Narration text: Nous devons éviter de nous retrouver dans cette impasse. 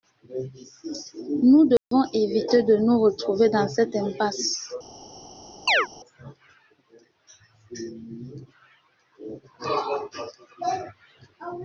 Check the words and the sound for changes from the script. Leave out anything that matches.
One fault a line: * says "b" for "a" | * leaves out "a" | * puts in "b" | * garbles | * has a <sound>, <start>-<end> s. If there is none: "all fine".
* has a dropout, 1.8-1.9 s
* has a chirp, 5.7-5.9 s